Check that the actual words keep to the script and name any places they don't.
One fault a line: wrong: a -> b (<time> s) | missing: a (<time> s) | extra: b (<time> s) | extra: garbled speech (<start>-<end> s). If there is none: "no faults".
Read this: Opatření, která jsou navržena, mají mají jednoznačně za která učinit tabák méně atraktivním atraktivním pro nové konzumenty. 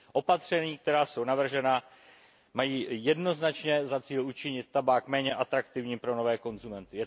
missing: mají (2.9 s)
wrong: která -> cíl (4.0 s)
missing: atraktivním (6.0 s)